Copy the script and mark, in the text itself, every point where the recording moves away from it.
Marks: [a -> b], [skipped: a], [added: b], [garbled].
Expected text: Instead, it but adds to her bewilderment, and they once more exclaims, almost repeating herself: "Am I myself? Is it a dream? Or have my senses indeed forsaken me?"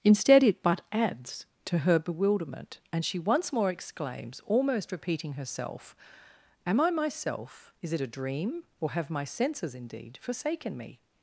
Instead, it but adds to her bewilderment, and [they -> she] once more exclaims, almost repeating herself: "Am I myself? Is it a dream? Or have my senses indeed forsaken me?"